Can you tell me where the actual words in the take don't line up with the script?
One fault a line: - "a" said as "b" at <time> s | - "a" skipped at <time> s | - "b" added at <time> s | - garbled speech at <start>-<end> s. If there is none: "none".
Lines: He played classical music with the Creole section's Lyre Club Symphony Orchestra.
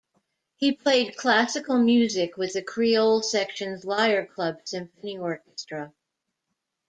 none